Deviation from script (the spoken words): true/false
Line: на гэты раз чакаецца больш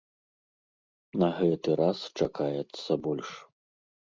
false